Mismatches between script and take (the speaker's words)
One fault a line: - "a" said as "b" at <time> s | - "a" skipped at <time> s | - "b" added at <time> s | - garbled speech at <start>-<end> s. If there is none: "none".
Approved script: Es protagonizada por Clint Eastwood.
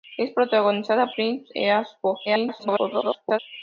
- "por" skipped at 1.1 s
- garbled speech at 2.2-3.4 s